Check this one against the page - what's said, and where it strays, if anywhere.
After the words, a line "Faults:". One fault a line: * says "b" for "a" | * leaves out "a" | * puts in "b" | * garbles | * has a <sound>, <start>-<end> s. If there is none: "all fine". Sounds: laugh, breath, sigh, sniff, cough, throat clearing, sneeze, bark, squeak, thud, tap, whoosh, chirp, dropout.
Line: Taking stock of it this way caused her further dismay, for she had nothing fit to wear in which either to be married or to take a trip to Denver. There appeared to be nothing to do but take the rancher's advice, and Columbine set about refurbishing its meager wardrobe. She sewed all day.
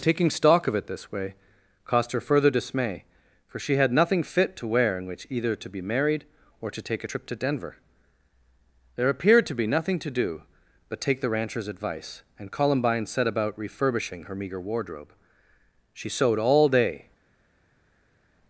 Taking stock of it this way caused her further dismay, for she had nothing fit to wear in which either to be married or to take a trip to Denver. There appeared to be nothing to do but take the rancher's advice, and Columbine set about refurbishing her meager wardrobe. She sewed all day.
Faults:
* says "her" for "its"